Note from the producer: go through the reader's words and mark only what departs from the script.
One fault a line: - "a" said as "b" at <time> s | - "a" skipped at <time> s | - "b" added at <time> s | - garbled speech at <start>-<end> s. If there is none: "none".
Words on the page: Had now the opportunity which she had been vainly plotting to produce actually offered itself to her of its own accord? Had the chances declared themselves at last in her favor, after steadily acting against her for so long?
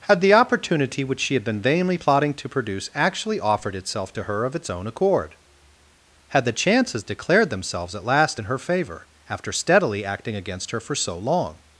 - "now" skipped at 0.2 s